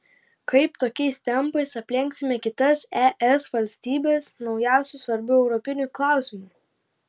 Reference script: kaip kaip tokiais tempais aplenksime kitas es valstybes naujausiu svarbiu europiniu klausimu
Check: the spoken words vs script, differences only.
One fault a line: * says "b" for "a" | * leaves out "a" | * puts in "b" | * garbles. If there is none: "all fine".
* leaves out "kaip"